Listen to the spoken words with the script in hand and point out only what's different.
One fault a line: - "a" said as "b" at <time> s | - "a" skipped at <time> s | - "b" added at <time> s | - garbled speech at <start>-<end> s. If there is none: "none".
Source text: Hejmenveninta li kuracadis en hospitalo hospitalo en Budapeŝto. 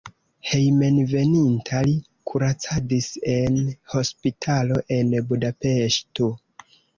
- "hospitalo" skipped at 4.8 s